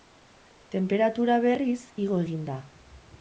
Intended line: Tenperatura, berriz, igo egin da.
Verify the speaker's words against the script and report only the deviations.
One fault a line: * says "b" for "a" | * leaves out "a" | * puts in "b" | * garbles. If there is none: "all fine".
all fine